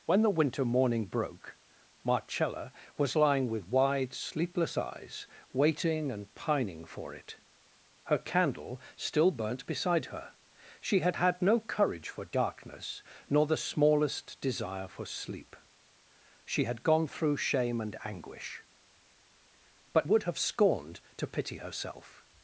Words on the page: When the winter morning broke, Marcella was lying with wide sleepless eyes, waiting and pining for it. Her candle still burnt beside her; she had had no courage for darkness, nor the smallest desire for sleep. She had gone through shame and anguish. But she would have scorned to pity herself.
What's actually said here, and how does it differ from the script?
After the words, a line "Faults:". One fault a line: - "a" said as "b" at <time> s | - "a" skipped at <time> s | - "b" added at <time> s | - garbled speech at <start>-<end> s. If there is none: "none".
When the winter morning broke, Marcella was lying with wide sleepless eyes, waiting and pining for it. Her candle still burnt beside her; she had had no courage for darkness, nor the smallest desire for sleep. She had gone through shame and anguish. But would have scorned to pity herself.
Faults:
- "she" skipped at 20.1 s